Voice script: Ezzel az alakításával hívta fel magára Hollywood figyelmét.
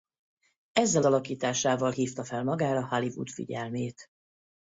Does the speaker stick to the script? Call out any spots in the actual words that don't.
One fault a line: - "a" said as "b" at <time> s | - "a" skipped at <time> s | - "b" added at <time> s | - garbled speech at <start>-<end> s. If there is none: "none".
- "az" skipped at 1.0 s